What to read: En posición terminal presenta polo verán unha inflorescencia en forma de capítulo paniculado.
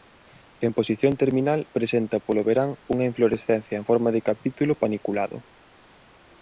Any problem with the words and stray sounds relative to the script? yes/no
no